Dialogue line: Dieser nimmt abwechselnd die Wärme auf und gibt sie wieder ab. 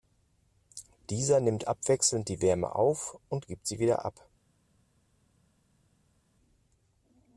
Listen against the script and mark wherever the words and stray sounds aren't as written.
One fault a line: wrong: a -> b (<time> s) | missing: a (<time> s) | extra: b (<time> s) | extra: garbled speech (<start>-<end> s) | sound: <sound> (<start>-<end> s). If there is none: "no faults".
no faults